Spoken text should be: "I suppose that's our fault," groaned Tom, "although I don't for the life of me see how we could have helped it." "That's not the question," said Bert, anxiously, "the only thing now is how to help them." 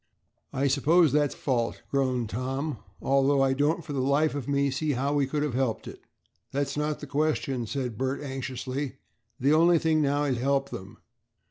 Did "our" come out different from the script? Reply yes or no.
yes